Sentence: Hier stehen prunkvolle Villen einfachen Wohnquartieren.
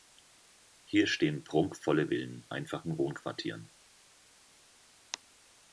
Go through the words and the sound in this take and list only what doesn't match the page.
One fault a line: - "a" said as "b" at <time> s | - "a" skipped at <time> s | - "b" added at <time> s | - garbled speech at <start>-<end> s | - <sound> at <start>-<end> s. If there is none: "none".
none